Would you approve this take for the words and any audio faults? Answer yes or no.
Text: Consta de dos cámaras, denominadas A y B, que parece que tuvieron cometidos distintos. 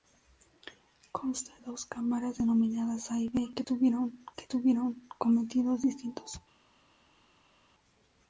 no